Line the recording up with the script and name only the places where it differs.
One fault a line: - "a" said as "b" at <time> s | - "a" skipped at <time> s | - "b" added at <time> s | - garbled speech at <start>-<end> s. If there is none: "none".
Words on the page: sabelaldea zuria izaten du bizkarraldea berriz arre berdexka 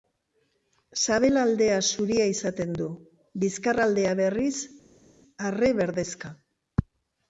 none